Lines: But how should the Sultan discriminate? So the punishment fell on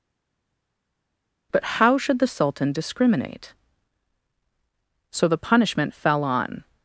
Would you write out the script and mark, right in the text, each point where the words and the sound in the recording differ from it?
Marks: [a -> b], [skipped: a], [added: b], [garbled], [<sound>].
But how should the Sultan discriminate? So the punishment fell on